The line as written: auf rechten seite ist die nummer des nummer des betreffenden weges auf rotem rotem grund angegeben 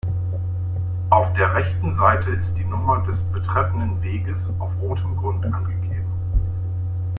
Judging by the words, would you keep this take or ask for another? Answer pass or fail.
fail